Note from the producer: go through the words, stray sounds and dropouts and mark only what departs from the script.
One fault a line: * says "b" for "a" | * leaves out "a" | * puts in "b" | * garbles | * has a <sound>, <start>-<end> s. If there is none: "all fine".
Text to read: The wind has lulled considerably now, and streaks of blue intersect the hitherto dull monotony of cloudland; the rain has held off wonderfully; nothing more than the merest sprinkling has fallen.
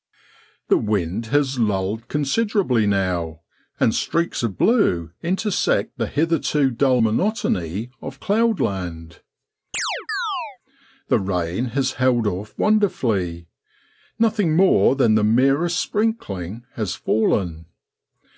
* has a chirp, 9.7-10.6 s